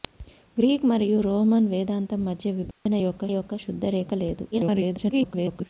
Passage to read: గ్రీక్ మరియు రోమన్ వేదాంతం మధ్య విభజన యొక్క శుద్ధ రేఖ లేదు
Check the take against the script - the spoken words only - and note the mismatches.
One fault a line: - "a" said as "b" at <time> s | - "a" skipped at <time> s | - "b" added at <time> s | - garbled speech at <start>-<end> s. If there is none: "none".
- "యొక్క" added at 3.3 s
- garbled speech at 4.5-5.7 s